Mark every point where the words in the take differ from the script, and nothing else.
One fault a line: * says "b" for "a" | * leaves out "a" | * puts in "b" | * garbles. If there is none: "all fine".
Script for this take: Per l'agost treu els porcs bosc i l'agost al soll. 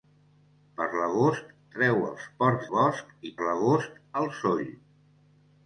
all fine